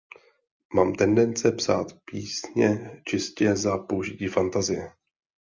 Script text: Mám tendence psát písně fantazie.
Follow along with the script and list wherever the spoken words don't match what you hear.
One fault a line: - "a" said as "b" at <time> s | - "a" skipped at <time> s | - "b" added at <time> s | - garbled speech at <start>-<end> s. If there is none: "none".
- "čistě za použití" added at 3.0 s